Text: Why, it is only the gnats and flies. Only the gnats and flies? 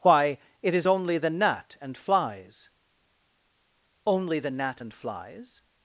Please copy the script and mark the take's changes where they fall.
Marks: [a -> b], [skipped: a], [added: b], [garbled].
Why, it is only the [gnats -> gnat] and flies. Only the [gnats -> gnat] and flies?